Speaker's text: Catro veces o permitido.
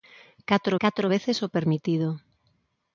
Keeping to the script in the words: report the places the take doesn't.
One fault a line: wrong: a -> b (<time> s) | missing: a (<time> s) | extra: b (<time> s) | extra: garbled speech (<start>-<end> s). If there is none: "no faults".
extra: catro (0.8 s)